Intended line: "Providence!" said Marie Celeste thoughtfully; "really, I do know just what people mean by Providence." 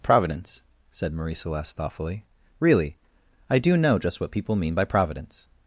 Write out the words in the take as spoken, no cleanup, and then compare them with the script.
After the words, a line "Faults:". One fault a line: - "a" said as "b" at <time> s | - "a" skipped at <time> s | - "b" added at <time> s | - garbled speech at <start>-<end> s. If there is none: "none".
"Providence!" said Marie Celeste thoughtfully; "really, I do know just what people mean by Providence."
Faults:
none